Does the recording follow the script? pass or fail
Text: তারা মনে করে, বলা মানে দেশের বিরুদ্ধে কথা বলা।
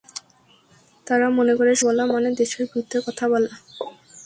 pass